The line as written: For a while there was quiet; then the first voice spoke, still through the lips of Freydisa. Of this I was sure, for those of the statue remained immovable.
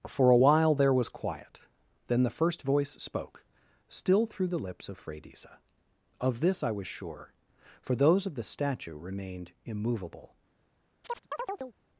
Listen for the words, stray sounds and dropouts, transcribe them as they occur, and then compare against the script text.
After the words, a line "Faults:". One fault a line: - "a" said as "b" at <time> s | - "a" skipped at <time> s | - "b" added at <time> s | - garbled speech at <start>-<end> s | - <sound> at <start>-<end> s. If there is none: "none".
For a while there was quiet; then the first voice spoke, still through the lips of Freydisa. Of this I was sure, for those of the statue remained immovable.
Faults:
- chirp at 11.0-11.8 s